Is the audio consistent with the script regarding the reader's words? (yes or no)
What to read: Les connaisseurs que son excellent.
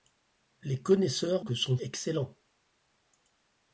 yes